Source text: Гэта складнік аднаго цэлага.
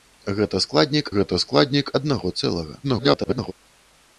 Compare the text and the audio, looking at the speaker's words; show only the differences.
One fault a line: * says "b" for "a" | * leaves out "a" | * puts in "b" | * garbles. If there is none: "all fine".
* puts in "гэта складнік"
* garbles